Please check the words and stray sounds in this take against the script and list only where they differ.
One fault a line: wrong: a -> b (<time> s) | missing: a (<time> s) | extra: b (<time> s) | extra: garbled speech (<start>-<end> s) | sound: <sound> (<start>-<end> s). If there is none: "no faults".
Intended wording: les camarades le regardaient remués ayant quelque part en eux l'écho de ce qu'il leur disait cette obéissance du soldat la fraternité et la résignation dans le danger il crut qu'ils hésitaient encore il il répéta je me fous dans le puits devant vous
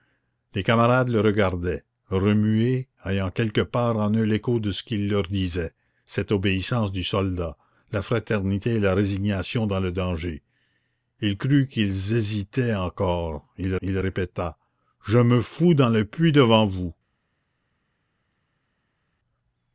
no faults